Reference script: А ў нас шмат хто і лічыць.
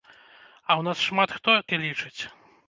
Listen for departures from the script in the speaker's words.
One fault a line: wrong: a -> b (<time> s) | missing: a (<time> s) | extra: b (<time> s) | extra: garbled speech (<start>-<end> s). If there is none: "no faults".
no faults